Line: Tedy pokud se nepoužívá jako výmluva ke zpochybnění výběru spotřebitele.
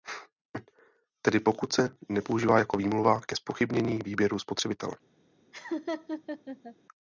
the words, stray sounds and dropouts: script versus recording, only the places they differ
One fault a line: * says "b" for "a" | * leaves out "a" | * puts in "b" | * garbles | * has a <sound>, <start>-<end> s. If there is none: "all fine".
* has a laugh, 5.5-6.8 s